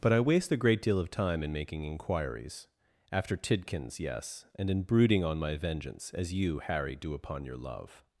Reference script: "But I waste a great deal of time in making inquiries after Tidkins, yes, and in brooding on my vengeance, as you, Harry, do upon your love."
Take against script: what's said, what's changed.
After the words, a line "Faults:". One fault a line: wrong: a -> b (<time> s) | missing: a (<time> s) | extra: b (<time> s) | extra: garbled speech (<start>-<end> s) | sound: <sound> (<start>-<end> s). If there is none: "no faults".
"But I waste a great deal of time in making inquiries after Tidkins, yes, and in brooding on my vengeance, as you, Harry, do upon your love."
Faults:
no faults